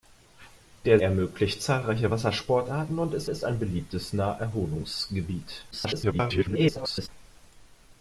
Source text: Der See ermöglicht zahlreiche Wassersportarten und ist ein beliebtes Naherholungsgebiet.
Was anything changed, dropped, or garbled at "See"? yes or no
yes